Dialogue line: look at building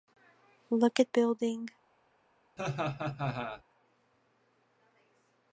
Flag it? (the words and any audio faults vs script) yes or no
yes